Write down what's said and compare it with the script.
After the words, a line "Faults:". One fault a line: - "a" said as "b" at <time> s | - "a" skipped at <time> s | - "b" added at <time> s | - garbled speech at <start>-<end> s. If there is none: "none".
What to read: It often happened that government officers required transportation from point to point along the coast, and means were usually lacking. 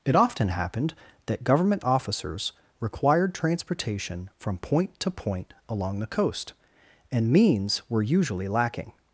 It often happened that government officers required transportation from point to point along the coast, and means were usually lacking.
Faults:
none